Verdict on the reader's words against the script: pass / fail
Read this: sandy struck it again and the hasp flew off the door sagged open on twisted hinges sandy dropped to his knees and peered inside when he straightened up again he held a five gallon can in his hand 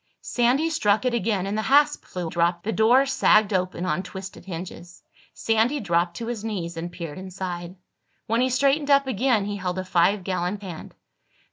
fail